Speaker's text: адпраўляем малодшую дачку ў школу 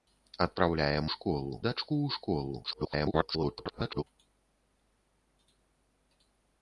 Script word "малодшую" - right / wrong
wrong